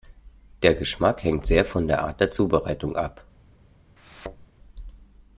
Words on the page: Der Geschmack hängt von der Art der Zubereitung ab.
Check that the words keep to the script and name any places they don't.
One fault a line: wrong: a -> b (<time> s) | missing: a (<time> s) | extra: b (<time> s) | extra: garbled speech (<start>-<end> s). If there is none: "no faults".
extra: sehr (1.4 s)